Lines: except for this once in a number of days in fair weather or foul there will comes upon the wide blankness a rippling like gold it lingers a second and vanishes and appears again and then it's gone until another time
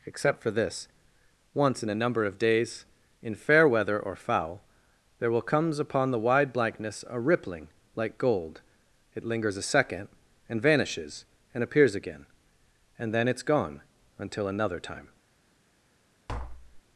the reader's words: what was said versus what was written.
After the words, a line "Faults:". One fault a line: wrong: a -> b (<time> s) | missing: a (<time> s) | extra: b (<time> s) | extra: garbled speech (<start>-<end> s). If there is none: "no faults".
except for this once in a number of days in fair weather or foul there will comes upon the wide blankness a rippling like gold it lingers a second and vanishes and appears again and then it's gone until another time
Faults:
no faults